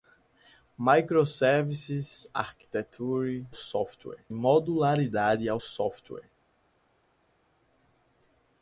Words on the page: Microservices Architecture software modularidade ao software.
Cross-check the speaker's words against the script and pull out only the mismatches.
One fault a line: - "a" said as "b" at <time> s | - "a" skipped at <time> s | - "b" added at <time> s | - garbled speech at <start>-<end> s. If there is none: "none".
none